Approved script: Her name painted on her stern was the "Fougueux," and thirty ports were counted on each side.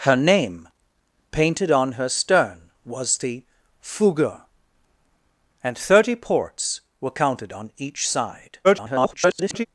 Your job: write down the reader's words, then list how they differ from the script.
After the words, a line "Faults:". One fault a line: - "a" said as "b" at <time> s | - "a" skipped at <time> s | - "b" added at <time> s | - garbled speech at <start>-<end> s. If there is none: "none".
Her name painted on her stern was the "Fougueux," and thirty ports were counted on each side. [garbled]
Faults:
- garbled speech at 8.6-9.7 s